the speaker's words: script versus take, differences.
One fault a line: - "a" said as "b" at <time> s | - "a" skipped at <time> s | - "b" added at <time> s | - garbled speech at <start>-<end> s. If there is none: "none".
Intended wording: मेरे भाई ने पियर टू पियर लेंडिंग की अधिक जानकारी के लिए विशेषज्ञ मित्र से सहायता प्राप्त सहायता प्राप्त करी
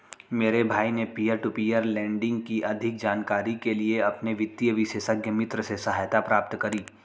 - "अपने वित्तीय" added at 4.0 s
- "सहायता प्राप्त" skipped at 6.6 s